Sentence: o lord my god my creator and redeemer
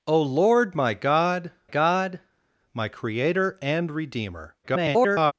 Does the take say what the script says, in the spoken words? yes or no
no